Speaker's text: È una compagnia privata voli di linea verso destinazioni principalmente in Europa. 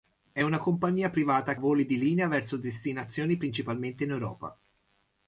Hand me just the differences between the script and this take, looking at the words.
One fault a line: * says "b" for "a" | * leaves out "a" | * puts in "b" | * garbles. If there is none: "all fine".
all fine